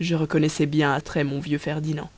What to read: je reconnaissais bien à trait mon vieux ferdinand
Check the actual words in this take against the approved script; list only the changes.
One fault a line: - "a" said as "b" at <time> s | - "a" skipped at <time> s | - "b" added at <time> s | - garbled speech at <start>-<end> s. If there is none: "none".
none